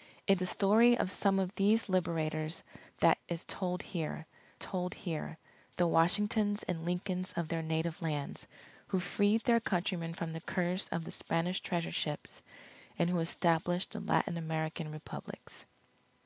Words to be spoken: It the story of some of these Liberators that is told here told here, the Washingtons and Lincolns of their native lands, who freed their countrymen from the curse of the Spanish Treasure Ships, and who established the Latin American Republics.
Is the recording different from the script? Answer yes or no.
no